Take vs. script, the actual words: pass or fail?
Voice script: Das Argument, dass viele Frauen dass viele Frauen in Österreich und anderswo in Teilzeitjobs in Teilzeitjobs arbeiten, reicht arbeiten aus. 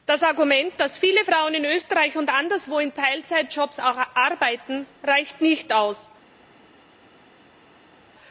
fail